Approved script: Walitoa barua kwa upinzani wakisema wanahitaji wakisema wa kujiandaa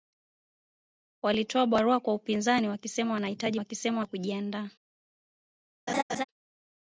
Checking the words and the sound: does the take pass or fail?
fail